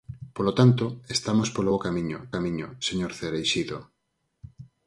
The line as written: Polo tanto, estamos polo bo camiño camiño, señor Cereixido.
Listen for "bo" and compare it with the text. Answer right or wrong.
right